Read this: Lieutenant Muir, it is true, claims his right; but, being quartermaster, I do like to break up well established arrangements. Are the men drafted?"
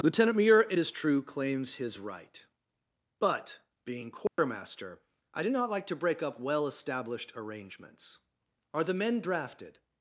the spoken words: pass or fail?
fail